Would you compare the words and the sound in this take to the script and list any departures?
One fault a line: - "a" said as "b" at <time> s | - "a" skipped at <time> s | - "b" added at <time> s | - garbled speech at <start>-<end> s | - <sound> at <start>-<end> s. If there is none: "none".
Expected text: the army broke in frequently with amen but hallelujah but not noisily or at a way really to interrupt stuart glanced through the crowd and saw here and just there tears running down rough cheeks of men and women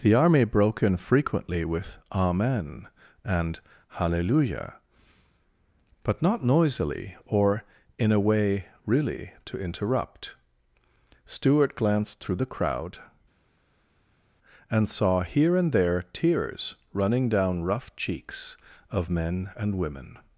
- "but" said as "and" at 3.2 s
- "at" said as "in" at 8.0 s
- "just" skipped at 15.7 s